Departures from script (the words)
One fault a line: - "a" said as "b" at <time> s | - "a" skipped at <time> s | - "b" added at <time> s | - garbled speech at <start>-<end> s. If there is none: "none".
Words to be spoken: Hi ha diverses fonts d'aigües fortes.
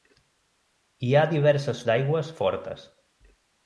- "fonts" skipped at 1.8 s